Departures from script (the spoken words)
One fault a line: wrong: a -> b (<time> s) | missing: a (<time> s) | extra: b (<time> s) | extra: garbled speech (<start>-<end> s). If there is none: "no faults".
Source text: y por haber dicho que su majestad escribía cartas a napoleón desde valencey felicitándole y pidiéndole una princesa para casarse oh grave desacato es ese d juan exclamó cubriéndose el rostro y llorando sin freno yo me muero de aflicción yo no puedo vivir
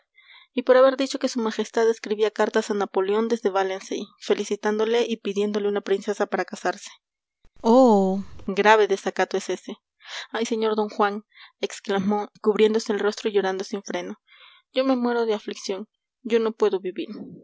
extra: ay sr (10.3 s)